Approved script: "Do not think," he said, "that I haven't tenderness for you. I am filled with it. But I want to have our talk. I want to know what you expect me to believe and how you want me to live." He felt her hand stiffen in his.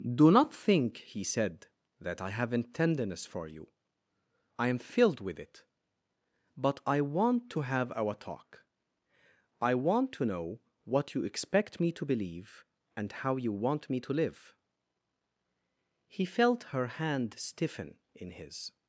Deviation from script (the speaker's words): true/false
false